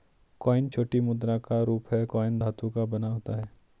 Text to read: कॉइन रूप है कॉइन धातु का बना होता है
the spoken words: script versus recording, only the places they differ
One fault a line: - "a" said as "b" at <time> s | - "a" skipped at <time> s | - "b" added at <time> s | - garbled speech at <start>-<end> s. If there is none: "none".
- "छोटी मुद्रा का" added at 0.7 s